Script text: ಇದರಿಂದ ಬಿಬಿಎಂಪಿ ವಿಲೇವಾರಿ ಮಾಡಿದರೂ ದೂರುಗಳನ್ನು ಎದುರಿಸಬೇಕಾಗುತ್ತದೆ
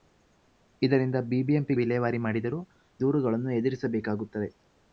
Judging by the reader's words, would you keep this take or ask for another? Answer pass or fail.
pass